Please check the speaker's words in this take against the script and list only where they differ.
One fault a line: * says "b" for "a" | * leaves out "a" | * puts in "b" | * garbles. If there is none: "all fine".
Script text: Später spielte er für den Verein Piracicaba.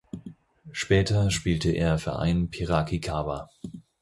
* leaves out "für den"